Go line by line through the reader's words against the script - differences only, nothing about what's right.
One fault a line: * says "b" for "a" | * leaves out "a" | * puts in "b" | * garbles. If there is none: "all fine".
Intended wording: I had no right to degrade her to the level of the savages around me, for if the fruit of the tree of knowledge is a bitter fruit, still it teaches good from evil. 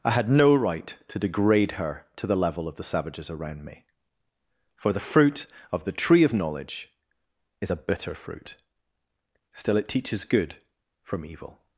* leaves out "if"